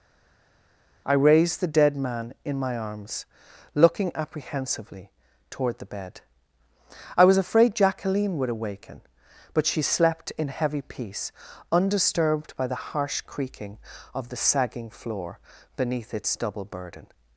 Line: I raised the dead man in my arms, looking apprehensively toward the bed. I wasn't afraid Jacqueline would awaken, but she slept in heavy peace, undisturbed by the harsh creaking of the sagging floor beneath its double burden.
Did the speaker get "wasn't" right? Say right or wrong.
wrong